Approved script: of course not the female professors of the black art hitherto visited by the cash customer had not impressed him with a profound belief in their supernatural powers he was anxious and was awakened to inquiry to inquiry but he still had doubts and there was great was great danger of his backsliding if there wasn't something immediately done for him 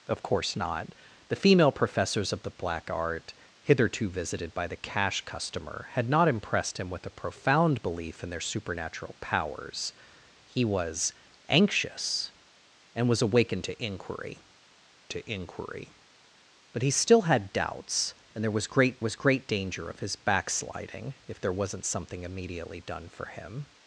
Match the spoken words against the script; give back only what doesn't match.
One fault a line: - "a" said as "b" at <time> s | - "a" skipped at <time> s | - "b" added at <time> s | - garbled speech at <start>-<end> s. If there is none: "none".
none